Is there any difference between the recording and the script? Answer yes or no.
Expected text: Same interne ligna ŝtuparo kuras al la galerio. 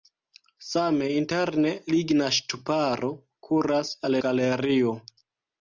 yes